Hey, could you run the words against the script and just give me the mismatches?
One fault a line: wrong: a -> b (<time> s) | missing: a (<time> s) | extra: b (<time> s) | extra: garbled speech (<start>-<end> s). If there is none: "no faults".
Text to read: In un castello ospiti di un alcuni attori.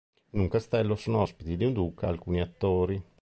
extra: sono (0.9 s)
extra: duca (1.7 s)